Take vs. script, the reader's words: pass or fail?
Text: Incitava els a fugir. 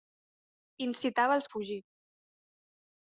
pass